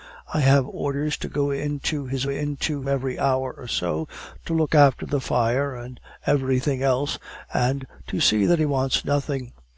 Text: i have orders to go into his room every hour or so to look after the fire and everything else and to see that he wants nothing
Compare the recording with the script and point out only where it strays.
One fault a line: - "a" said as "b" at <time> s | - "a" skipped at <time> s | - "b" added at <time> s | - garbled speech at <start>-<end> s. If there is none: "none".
- "room" said as "into" at 2.3 s